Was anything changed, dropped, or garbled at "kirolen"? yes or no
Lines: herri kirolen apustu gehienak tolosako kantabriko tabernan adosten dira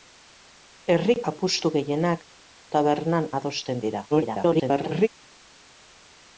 yes